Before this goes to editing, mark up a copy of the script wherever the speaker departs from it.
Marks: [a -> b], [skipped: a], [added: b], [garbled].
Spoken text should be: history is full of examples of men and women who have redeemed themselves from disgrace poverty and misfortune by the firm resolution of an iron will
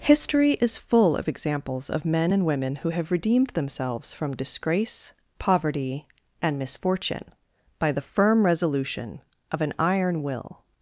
history is full of examples of men and women who have redeemed themselves from disgrace poverty and misfortune by the firm resolution of an iron will